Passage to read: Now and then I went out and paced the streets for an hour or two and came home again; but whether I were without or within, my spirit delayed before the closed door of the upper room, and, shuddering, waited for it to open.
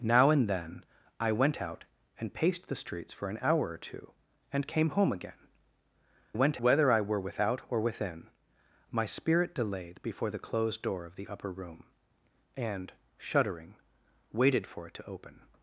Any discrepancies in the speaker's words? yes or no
yes